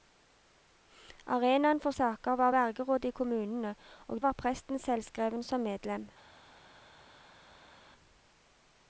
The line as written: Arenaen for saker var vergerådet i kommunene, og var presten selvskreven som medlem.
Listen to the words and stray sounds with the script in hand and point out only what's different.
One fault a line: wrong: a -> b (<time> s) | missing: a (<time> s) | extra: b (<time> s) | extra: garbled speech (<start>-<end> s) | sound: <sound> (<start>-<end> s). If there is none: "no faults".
no faults